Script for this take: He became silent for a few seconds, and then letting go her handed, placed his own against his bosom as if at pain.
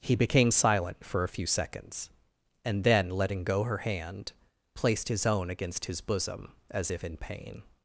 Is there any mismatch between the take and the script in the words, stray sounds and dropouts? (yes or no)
yes